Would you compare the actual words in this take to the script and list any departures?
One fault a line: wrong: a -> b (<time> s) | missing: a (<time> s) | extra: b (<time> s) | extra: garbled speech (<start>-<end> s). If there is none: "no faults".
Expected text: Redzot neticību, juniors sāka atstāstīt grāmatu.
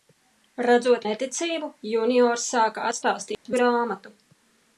no faults